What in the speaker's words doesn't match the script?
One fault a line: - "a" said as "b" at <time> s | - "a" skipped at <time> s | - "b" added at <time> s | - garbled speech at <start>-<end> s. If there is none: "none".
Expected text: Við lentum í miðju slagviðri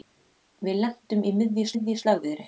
- "miðju" added at 1.7 s